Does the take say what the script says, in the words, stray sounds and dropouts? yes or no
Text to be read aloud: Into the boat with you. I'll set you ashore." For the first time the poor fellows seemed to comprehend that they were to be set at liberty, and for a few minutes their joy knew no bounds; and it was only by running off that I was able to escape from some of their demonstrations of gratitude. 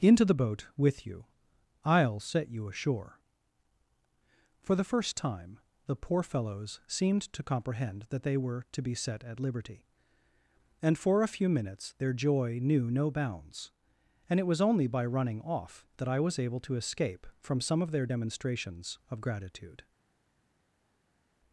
yes